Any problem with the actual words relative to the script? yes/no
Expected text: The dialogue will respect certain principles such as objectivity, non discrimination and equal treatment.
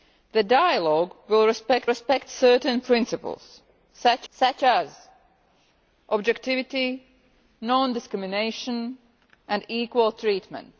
yes